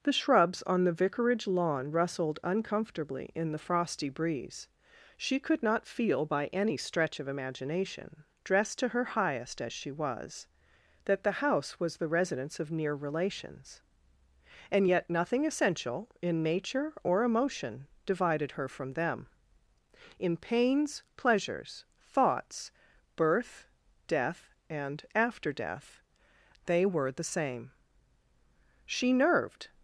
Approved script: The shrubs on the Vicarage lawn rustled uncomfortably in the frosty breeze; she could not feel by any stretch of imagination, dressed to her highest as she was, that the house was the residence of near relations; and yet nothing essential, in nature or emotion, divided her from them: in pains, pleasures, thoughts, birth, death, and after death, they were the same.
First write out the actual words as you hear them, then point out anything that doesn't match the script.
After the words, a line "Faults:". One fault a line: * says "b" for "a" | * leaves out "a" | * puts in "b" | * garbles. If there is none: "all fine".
The shrubs on the Vicarage lawn rustled uncomfortably in the frosty breeze; she could not feel by any stretch of imagination, dressed to her highest as she was, that the house was the residence of near relations; and yet nothing essential, in nature or emotion, divided her from them: in pains, pleasures, thoughts, birth, death, and after death, they were the same. She nerved
Faults:
* puts in "She nerved"